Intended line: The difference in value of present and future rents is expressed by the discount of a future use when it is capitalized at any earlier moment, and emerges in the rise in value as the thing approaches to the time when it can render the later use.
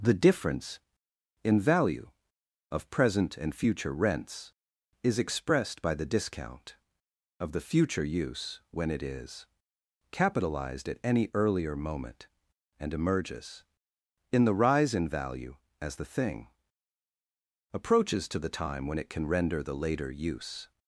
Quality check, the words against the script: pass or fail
fail